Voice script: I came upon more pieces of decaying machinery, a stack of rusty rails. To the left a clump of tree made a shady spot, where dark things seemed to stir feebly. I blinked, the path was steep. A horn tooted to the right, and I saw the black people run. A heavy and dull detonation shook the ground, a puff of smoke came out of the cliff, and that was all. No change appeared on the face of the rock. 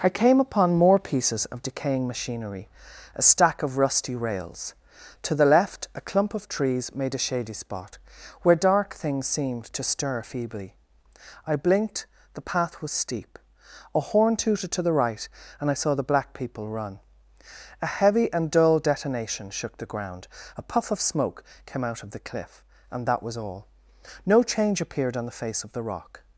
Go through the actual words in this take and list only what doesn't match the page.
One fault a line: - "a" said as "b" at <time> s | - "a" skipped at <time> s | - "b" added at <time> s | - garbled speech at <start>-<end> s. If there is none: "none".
- "tree" said as "trees" at 6.5 s